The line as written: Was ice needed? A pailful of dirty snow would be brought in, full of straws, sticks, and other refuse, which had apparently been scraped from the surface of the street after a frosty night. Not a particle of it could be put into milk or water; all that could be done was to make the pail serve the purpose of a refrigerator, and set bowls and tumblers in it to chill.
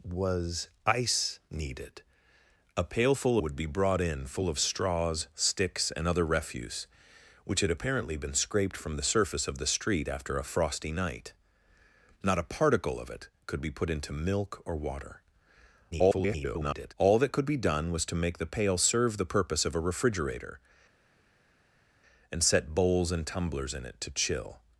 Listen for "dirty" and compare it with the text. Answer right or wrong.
wrong